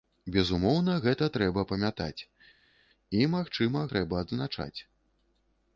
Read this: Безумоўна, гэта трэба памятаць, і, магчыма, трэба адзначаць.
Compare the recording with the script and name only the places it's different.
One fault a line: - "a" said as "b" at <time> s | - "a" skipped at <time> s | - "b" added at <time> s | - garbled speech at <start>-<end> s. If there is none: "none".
none